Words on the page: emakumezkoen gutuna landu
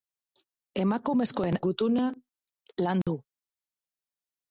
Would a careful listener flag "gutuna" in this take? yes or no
no